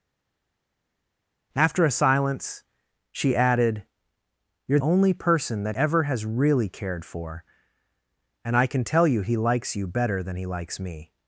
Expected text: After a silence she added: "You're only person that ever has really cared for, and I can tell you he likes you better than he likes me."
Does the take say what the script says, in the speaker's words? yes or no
yes